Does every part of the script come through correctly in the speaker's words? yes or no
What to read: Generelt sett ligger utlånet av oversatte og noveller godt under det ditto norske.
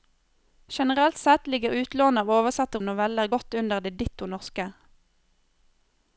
yes